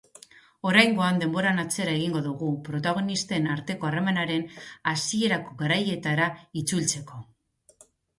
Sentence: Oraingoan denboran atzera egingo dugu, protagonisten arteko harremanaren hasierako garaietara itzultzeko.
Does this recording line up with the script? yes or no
yes